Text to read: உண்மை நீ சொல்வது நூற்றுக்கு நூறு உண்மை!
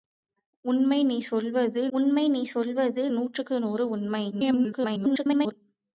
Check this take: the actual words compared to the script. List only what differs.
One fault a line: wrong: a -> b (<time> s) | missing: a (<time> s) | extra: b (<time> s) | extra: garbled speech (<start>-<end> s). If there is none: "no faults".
extra: உண்மை நீ சொல்வது (1.9 s)
extra: garbled speech (4.3-5.5 s)